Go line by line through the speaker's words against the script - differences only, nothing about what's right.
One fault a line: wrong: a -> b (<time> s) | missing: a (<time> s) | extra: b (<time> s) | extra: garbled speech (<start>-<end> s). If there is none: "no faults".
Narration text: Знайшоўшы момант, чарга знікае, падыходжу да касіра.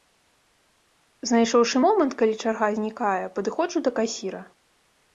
extra: калі (2.2 s)